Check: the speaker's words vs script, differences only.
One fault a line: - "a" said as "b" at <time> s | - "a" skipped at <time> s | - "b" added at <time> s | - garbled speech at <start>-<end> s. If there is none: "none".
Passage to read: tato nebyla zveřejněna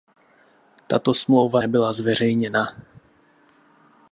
- "smlouva" added at 1.1 s